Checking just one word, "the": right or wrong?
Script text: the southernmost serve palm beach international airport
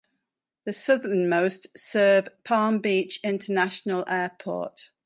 right